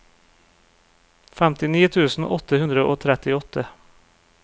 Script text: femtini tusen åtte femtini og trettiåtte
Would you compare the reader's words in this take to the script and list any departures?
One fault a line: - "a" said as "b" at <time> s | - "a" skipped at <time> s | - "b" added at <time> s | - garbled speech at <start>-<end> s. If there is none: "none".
- "femtini" said as "hundre" at 2.6 s